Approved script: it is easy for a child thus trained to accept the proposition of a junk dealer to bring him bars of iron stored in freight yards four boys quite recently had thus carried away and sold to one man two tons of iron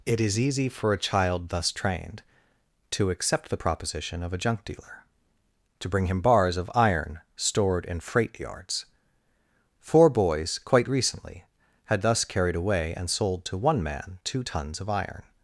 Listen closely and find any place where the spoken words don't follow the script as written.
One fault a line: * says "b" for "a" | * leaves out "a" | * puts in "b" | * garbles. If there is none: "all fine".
all fine